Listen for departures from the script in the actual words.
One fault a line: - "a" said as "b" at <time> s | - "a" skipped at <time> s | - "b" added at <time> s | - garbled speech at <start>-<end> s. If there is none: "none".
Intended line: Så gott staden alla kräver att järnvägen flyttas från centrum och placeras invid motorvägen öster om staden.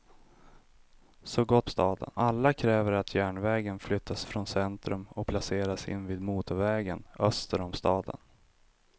none